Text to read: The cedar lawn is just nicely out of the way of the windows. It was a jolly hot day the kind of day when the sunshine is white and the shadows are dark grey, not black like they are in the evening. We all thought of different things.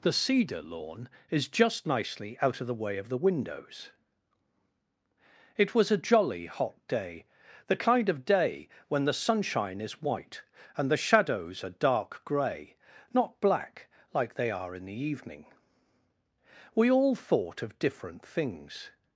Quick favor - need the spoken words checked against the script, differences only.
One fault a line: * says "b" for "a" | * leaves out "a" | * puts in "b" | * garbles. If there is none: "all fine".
all fine